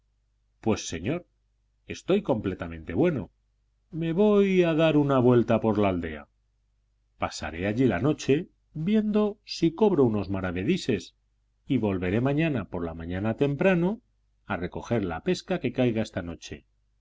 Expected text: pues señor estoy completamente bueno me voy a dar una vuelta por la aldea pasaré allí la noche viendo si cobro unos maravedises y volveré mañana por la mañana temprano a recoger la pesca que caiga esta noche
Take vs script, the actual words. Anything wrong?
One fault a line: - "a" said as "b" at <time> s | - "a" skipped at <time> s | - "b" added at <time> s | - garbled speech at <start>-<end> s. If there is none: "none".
none